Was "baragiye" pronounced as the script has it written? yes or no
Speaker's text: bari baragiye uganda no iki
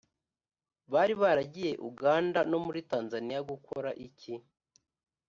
yes